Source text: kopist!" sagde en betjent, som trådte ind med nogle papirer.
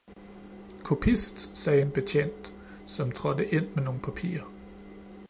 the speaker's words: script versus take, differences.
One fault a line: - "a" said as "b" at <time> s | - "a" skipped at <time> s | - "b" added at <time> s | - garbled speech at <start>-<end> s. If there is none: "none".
none